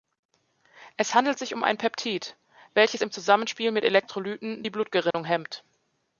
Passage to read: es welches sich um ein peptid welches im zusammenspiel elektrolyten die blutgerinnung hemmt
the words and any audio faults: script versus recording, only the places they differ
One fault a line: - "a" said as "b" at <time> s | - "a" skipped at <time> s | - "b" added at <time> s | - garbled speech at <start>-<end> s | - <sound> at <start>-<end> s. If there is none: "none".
- "welches" said as "handelt" at 1.1 s
- "mit" added at 3.7 s
- dropout at 5.1-5.1 s